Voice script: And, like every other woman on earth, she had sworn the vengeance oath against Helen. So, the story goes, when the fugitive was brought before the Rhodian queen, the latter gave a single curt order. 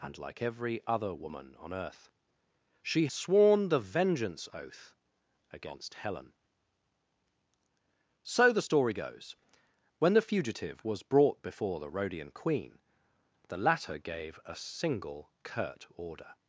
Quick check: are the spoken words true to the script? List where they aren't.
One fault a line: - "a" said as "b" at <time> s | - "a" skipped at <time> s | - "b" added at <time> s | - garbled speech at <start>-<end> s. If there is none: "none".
- "had" skipped at 3.1 s